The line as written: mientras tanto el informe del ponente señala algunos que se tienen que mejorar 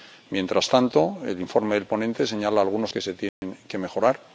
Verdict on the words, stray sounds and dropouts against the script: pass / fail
fail